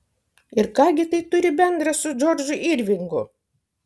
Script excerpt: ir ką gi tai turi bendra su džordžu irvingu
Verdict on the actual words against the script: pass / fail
pass